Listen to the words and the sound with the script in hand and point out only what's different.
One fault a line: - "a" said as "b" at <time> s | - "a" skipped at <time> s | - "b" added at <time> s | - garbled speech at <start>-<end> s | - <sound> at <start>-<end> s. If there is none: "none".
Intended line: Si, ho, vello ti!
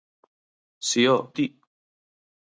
- "vello" skipped at 1.1 s